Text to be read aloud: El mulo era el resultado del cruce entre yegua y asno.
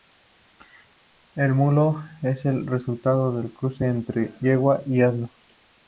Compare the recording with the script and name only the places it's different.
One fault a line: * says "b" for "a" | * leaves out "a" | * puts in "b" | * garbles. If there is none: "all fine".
* says "es" for "era"